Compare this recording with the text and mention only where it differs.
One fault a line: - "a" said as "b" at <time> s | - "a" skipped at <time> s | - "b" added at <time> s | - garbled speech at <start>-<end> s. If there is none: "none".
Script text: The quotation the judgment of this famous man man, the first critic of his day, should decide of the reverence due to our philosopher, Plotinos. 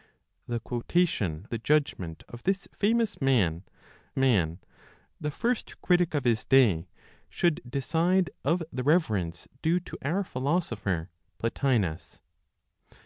none